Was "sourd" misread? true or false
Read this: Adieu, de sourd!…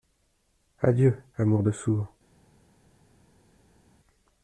false